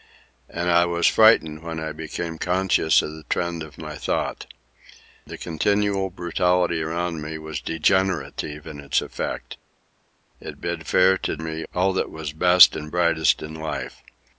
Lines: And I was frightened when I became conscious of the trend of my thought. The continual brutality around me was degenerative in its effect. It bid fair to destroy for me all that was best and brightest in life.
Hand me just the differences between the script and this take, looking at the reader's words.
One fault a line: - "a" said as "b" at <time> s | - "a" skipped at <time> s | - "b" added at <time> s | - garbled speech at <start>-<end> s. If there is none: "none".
- "destroy for" skipped at 11.4 s